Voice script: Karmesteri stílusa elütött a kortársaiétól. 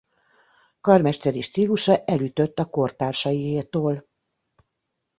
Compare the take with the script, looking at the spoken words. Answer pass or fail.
pass